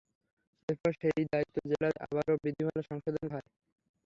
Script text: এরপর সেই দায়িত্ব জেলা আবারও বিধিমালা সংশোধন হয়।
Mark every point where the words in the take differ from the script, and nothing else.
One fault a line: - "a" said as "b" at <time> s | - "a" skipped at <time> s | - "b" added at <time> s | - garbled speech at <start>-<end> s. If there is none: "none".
none